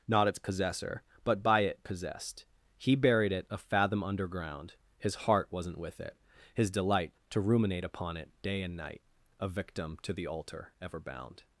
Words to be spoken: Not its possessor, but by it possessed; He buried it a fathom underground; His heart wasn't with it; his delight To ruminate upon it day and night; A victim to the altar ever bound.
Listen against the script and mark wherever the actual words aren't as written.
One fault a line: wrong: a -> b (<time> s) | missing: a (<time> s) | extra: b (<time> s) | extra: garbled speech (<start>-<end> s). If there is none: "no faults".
no faults